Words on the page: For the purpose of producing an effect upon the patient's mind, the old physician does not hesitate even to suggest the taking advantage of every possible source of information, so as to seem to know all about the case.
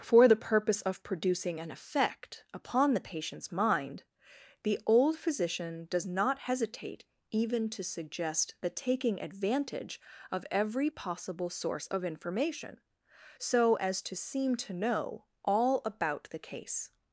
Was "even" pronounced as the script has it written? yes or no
yes